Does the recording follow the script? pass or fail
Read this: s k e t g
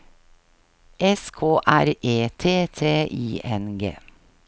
fail